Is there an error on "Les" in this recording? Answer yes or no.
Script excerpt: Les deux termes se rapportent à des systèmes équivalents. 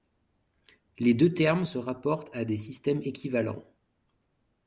no